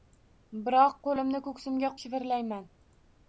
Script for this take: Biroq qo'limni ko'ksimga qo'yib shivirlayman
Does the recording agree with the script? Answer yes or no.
no